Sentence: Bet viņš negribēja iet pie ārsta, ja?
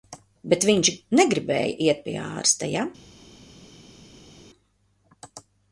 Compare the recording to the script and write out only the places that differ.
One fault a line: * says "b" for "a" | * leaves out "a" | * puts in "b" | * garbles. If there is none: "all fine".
all fine